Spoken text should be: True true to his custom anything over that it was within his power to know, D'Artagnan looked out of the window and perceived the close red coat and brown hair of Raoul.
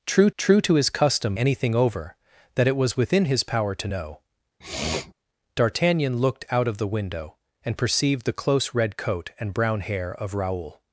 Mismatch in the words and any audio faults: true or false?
true